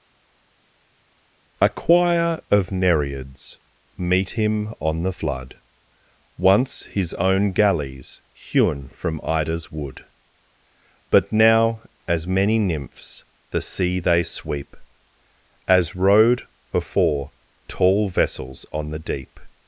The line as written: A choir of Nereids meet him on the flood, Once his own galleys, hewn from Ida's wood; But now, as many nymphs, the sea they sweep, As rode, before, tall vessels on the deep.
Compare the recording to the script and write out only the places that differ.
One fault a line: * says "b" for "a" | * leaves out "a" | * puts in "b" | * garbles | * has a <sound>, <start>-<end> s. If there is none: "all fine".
* says "afore" for "before"